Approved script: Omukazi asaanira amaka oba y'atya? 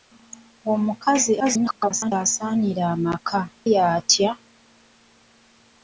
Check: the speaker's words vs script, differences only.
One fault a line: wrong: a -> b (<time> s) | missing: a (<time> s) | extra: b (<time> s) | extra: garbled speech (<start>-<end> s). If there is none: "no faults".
extra: garbled speech (1.4-2.1 s)
missing: oba (3.4 s)